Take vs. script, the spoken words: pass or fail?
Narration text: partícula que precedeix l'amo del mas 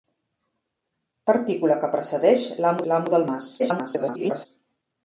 fail